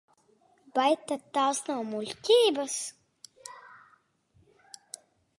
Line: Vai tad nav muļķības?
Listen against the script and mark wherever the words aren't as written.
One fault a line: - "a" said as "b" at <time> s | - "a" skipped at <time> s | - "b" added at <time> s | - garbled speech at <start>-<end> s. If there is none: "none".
- "tās" added at 1.4 s